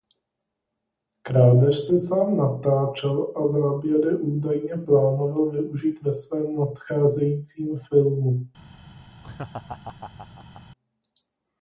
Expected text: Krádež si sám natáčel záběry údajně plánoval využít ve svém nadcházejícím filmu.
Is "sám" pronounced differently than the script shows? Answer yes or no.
no